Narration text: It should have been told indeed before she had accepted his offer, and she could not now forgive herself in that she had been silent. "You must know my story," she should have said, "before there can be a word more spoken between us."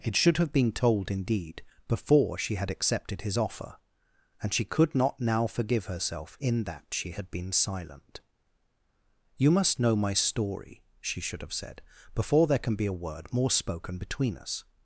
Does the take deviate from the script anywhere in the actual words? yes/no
no